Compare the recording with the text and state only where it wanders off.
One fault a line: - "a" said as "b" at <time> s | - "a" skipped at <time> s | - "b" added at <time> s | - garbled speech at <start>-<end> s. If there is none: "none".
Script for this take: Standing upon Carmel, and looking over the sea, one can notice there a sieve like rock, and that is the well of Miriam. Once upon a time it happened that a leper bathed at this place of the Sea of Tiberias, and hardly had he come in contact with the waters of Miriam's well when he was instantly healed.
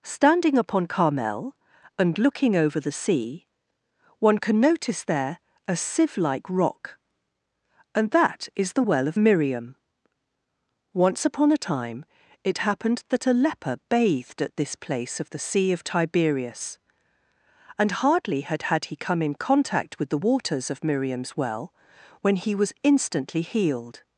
- "had" added at 18.6 s